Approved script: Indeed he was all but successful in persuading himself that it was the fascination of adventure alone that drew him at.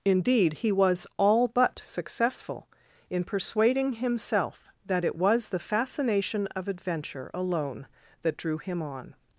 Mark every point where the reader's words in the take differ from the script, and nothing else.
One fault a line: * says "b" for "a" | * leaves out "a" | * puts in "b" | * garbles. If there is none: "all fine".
* says "on" for "at"